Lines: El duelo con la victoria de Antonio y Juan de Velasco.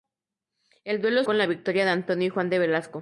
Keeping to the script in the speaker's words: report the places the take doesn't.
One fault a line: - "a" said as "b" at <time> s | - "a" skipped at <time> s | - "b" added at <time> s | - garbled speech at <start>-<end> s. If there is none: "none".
none